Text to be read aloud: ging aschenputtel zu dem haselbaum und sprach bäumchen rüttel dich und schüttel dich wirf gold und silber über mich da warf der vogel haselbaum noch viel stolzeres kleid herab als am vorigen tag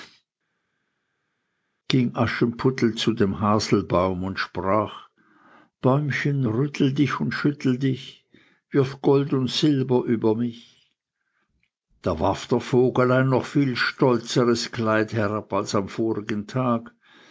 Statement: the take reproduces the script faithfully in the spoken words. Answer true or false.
false